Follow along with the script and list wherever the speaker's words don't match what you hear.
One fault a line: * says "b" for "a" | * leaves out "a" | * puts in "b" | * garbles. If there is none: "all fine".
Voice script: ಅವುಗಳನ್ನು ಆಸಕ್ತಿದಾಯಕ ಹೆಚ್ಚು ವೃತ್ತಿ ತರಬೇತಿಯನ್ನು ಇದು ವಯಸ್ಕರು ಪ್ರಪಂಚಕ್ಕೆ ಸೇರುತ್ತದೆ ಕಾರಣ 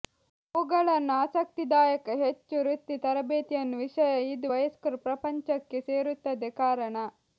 * puts in "ವಿಷಯ"